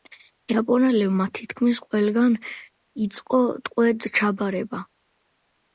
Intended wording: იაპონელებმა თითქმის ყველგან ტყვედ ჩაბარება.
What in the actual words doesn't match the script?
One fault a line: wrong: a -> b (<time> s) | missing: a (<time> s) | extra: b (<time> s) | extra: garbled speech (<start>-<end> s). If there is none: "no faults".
extra: იწყო (3.1 s)